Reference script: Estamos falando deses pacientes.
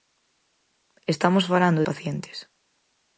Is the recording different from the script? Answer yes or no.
yes